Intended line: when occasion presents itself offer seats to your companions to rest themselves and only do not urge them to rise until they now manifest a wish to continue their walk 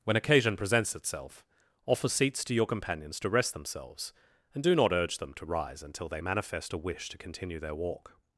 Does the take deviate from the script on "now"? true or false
true